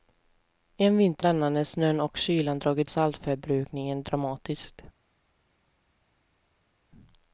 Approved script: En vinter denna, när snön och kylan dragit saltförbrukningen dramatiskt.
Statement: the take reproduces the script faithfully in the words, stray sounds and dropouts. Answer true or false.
true